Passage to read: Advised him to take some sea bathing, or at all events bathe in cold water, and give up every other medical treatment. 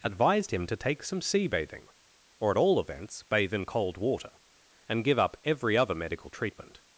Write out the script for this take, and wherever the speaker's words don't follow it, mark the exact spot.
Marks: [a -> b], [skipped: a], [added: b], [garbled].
Advised him to take some sea bathing, or at all events bathe in cold water, and give up every other medical treatment.